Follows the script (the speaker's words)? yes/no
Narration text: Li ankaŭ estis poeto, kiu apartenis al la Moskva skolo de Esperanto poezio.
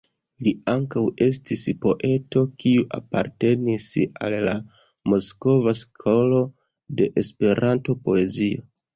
yes